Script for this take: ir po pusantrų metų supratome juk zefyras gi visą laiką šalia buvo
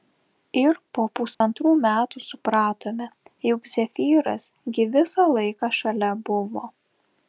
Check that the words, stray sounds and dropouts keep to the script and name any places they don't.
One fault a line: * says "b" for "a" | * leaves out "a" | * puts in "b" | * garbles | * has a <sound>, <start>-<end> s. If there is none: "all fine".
* has a dropout, 1.3-1.4 s